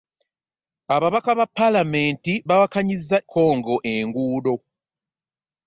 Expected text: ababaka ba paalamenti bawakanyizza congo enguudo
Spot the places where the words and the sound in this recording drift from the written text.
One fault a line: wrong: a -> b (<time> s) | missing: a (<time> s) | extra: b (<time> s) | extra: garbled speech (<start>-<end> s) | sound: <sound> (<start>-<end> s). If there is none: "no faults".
no faults